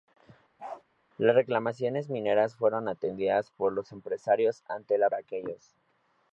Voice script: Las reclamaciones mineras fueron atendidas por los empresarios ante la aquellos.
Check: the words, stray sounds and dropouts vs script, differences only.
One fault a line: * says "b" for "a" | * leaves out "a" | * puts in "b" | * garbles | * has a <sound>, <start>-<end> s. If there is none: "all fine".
* has a bark, 0.6-0.8 s